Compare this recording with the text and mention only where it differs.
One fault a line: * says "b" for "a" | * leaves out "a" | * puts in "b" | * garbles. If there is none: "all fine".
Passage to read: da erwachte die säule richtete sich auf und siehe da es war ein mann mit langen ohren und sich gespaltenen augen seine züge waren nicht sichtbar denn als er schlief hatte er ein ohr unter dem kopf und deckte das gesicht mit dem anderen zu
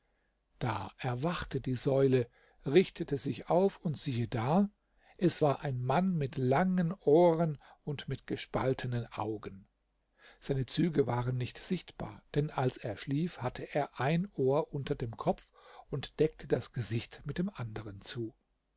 * says "mit" for "sich"